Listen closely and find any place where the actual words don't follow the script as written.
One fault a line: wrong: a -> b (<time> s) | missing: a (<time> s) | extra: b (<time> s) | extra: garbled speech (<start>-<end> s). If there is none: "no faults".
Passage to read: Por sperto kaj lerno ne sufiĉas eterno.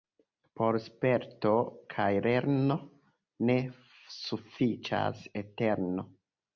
no faults